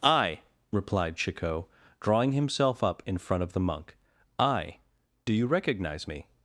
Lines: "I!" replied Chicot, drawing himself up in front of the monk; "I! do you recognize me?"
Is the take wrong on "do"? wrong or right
right